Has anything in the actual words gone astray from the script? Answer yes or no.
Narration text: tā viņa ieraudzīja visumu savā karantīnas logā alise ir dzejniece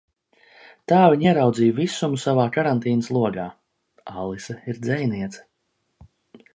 no